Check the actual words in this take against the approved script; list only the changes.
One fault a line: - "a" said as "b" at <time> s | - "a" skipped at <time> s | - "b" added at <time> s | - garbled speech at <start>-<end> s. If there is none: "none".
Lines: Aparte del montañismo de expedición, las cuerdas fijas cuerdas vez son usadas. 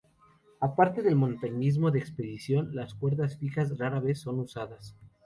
- "cuerdas" said as "rara" at 3.8 s